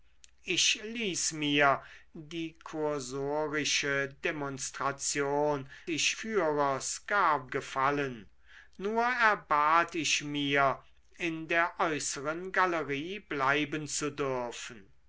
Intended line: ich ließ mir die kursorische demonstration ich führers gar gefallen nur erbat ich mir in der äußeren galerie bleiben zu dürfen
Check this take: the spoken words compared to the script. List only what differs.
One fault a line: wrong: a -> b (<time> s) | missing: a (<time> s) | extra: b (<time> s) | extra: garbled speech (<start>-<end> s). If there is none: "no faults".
no faults